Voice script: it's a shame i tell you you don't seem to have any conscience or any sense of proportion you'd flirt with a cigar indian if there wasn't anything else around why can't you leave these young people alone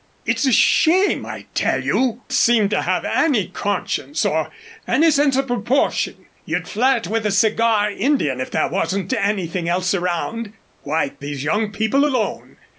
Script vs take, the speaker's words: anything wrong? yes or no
yes